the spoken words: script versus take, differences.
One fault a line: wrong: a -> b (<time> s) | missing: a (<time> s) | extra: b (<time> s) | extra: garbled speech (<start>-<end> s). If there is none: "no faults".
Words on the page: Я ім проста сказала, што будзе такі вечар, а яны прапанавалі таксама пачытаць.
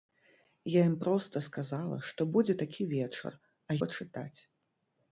missing: яны прапанавалі таксама (3.8 s)